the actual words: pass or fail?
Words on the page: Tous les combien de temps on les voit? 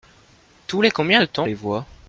fail